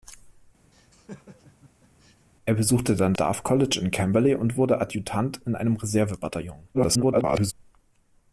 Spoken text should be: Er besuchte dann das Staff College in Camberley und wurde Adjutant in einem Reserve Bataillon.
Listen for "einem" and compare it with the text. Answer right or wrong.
right